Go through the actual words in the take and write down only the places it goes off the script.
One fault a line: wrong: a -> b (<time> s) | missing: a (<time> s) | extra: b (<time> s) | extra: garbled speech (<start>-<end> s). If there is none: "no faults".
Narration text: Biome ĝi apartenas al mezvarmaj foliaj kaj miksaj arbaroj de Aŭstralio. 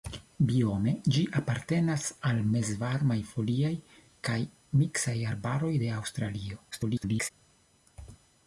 extra: garbled speech (6.7-7.3 s)